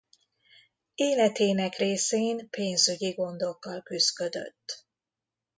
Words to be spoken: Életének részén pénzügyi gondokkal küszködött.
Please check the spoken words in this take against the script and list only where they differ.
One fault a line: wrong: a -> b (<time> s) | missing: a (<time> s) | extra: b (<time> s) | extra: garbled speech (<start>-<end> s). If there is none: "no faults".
no faults